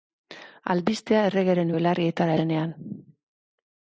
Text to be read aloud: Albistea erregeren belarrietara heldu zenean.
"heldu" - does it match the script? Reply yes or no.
no